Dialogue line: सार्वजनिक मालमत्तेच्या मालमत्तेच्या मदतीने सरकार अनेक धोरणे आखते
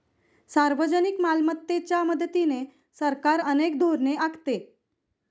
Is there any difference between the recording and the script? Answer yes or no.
yes